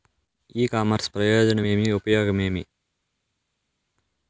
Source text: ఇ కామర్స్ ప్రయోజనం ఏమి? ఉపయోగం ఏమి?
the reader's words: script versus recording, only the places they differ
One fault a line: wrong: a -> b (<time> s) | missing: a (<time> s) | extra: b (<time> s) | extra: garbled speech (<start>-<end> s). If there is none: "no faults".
no faults